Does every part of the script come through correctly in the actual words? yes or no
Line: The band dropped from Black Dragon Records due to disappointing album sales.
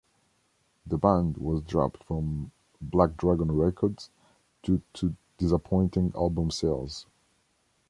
no